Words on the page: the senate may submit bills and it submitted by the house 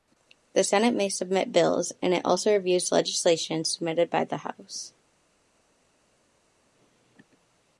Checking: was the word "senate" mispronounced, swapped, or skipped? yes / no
no